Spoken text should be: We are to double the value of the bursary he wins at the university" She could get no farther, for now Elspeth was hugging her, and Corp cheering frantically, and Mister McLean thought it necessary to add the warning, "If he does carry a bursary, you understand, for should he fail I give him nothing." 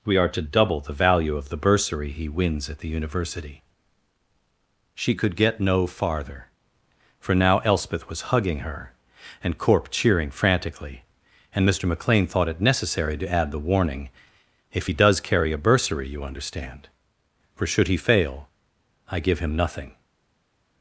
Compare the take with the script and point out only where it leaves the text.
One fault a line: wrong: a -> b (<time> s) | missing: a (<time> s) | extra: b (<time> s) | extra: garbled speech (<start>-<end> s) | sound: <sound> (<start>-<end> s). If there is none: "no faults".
no faults